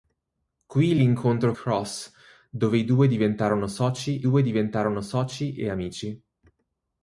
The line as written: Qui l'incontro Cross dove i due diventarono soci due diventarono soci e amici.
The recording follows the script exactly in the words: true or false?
true